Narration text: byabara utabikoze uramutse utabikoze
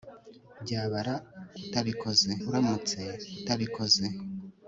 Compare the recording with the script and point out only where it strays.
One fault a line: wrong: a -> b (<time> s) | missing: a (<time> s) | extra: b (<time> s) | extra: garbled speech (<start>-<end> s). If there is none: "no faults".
no faults